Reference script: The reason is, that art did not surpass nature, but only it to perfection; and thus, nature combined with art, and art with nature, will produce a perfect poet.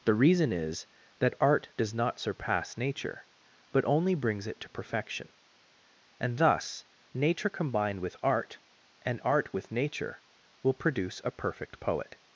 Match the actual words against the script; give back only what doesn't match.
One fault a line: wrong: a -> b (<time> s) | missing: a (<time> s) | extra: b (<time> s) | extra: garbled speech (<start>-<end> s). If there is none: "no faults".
wrong: did -> does (1.8 s)
extra: brings (4.2 s)